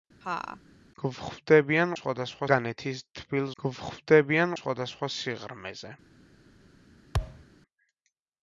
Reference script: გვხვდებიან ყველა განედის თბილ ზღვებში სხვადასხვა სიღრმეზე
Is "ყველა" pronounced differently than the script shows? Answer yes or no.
yes